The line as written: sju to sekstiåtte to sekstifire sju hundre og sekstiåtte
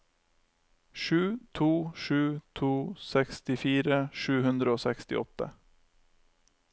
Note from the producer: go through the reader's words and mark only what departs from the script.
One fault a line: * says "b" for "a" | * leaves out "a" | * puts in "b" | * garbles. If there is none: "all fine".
* says "sju" for "sekstiåtte"